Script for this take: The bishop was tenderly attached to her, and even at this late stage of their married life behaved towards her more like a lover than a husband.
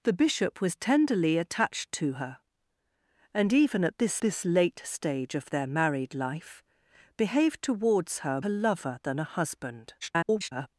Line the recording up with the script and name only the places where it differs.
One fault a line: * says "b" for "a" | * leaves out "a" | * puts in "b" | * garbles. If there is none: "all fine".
* puts in "this"
* leaves out "more like"
* garbles